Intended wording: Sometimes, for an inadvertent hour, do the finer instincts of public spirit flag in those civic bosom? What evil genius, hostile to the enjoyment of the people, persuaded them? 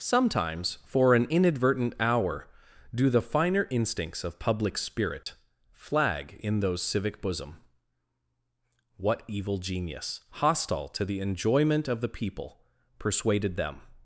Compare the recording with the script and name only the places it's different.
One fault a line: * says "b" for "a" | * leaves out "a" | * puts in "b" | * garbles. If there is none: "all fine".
all fine